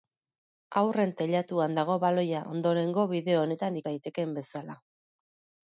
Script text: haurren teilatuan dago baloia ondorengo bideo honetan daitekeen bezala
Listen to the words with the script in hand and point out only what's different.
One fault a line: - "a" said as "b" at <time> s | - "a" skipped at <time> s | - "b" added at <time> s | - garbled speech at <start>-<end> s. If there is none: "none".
none